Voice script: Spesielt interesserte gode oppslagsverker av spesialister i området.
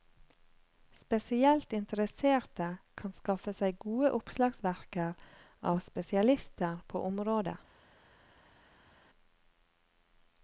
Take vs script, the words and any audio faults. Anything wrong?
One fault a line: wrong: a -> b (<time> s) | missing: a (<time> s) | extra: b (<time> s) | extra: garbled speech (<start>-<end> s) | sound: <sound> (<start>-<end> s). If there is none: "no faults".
extra: kan skaffe seg (3.0 s)
wrong: i -> på (6.9 s)